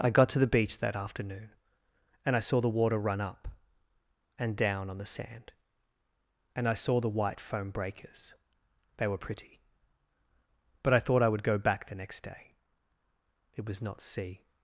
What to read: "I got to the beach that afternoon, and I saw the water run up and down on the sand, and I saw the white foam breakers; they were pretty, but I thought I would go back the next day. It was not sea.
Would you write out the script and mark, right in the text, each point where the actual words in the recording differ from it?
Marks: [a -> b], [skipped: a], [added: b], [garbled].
"I got to the beach that afternoon, and I saw the water run up and down on the sand, and I saw the white foam breakers; they were pretty, but I thought I would go back the next day. It was not sea.